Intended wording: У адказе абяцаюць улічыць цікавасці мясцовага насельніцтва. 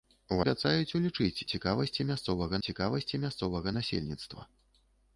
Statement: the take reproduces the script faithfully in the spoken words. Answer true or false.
false